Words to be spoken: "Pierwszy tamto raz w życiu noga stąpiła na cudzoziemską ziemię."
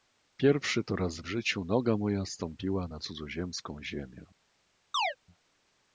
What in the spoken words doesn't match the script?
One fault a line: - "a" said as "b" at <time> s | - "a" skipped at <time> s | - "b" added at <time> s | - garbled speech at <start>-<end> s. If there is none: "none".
- "tamto" said as "to" at 0.8 s
- "moja" added at 2.0 s